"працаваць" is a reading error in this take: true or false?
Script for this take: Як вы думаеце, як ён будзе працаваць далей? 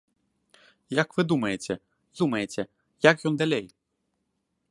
true